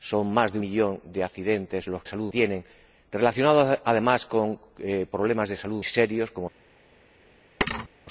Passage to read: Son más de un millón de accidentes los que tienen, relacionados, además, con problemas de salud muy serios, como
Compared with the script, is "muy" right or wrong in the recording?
wrong